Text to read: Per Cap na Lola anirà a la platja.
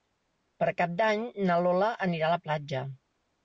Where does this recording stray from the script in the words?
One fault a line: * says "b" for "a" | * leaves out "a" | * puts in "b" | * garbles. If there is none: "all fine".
* puts in "d'Any"